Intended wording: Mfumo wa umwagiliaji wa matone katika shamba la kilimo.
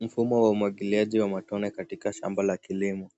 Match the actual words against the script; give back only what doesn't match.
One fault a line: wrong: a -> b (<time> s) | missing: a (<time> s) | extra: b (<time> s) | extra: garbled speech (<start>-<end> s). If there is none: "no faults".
no faults